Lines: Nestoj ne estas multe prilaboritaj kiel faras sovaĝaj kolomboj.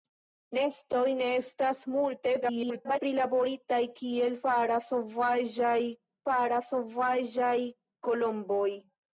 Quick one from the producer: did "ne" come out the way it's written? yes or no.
yes